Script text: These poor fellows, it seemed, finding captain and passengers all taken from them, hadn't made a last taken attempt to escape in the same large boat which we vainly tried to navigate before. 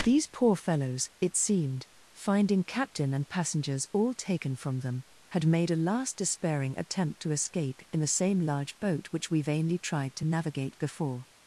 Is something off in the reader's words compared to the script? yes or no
yes